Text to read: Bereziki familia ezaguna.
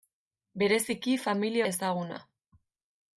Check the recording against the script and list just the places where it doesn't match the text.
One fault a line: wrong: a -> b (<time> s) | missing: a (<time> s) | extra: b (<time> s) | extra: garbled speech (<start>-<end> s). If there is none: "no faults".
no faults